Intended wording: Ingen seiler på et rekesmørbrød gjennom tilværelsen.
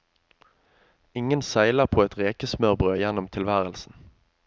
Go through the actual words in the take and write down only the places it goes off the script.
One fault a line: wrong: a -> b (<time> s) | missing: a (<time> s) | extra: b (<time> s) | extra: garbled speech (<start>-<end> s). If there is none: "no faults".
no faults